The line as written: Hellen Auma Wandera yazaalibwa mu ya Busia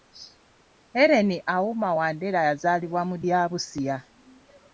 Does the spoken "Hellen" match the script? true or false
true